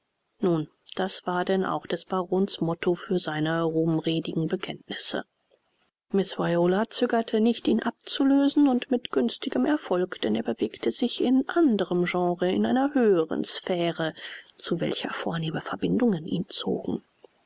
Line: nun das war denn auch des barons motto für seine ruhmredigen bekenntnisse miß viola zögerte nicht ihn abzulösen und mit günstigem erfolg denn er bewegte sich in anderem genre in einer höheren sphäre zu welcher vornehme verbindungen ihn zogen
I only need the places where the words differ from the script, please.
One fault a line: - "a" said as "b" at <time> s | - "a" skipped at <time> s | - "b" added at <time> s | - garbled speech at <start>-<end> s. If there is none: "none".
none